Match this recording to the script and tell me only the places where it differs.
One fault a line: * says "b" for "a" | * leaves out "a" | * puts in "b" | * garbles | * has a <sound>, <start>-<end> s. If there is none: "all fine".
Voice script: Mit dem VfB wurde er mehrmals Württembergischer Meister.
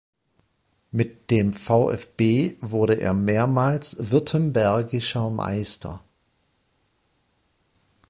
all fine